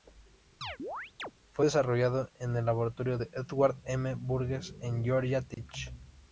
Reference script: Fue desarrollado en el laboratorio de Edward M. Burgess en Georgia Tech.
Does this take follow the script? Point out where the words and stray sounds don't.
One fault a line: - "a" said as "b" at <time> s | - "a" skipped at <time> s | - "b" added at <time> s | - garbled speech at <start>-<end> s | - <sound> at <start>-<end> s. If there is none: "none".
- chirp at 0.6-1.3 s
- dropout at 5.5-5.6 s